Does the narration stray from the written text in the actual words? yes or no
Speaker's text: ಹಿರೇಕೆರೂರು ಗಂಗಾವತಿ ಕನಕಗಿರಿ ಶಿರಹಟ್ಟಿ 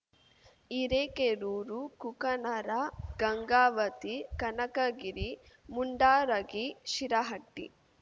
yes